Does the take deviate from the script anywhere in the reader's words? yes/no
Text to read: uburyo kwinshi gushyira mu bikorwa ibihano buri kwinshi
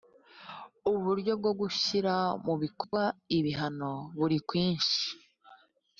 yes